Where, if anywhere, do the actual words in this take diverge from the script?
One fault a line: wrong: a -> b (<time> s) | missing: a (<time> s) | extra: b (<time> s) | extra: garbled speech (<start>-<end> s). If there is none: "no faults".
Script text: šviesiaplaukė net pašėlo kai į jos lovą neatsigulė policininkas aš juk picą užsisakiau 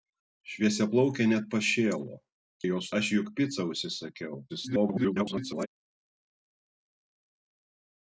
missing: kai (2.2 s)
missing: lovą neatsigulė policininkas (2.9 s)
extra: garbled speech (4.5-5.7 s)